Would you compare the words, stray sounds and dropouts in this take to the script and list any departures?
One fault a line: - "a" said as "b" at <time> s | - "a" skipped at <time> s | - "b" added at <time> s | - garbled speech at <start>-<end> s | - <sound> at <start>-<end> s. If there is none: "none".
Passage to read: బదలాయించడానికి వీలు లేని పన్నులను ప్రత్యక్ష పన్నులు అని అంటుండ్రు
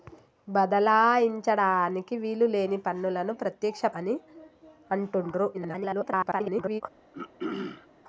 - "పన్నులు" skipped at 3.9 s
- garbled speech at 5.5-6.8 s
- throat clearing at 7.1-7.9 s